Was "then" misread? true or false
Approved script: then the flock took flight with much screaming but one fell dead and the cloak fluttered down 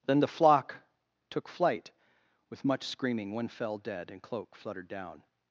false